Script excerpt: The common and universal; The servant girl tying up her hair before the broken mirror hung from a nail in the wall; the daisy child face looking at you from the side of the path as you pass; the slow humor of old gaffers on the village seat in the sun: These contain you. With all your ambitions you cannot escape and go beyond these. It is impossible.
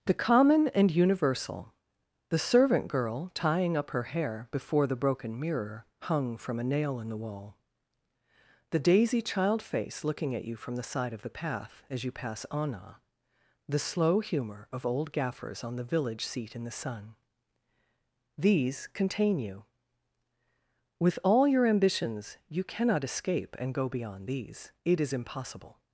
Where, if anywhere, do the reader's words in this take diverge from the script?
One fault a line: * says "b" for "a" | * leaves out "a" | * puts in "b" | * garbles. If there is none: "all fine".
* puts in "anna"